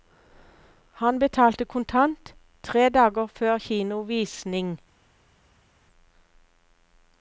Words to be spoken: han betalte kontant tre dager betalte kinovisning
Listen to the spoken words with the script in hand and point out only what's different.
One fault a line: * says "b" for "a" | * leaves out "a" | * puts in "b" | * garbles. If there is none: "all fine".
* says "før" for "betalte"